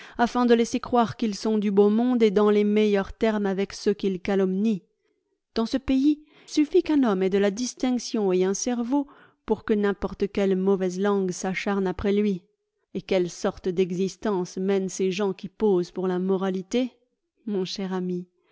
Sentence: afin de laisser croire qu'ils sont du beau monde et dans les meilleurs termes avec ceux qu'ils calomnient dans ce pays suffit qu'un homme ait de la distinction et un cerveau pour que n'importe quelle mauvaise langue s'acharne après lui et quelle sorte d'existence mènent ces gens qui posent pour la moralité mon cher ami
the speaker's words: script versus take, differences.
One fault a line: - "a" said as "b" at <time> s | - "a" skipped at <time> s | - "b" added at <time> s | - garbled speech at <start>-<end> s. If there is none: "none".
none